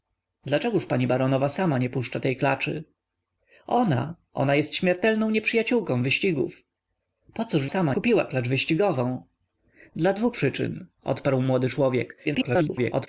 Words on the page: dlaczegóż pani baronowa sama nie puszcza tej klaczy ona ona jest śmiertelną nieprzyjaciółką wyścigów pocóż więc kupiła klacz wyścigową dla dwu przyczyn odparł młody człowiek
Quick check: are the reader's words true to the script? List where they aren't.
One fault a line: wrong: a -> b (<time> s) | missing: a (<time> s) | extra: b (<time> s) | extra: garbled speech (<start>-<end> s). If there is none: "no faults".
wrong: więc -> sama (7.6 s)
extra: garbled speech (12.2-13.1 s)